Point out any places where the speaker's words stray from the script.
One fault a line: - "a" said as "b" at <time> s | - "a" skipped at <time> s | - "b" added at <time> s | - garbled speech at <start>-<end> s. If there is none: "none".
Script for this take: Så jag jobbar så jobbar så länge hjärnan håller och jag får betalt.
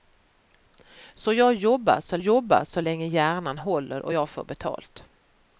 none